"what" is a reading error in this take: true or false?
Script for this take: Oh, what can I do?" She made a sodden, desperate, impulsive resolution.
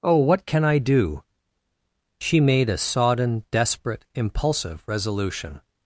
false